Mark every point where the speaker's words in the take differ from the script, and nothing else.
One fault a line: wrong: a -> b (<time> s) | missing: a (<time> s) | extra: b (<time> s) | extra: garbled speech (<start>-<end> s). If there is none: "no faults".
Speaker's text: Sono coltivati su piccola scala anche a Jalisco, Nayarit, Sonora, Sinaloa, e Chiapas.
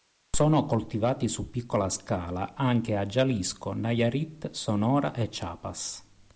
missing: Sinaloa (5.2 s)